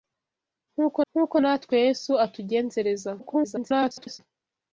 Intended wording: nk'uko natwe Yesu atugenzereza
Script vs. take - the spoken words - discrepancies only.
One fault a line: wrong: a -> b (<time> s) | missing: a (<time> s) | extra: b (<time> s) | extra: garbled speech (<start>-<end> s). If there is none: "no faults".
extra: nk'uko (1.1 s)
extra: garbled speech (3.2-4.2 s)